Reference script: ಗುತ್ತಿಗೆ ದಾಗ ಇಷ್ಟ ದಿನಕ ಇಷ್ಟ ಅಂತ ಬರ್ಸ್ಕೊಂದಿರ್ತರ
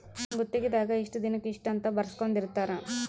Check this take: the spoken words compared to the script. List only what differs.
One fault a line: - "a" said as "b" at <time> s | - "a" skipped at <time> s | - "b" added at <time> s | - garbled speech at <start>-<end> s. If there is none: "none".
none